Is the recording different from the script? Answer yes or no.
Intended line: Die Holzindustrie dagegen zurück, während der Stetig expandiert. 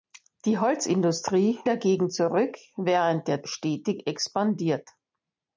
no